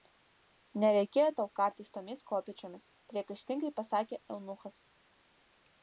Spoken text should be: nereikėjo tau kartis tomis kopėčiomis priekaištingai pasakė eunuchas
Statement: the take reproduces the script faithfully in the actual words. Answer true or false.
true